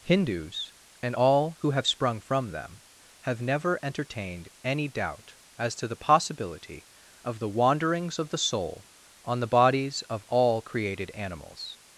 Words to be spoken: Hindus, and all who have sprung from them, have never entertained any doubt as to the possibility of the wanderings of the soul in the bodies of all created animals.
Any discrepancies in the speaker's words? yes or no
yes